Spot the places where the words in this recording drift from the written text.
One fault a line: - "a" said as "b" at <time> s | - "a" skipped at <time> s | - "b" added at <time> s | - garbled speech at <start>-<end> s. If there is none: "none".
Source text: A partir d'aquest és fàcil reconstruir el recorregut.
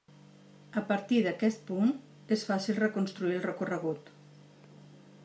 - "punt" added at 1.7 s